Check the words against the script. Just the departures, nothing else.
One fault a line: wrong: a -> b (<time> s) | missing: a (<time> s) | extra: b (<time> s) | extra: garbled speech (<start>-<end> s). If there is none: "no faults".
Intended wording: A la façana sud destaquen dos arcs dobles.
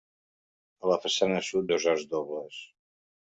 missing: destaquen (1.7 s)